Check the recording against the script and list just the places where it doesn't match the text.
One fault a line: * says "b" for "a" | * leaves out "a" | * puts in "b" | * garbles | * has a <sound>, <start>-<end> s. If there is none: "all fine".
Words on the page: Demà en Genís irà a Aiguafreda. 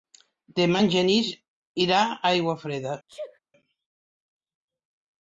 * has a sneeze, 3.1-3.4 s